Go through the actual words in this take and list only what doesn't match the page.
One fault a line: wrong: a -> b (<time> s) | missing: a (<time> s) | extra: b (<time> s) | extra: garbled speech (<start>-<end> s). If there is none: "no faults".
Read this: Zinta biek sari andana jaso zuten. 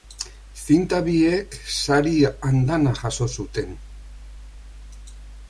no faults